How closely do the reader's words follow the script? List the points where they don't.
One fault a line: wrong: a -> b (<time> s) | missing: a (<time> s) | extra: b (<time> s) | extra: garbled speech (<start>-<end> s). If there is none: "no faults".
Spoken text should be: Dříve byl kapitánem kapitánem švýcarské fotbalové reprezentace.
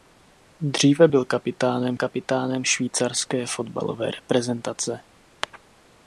no faults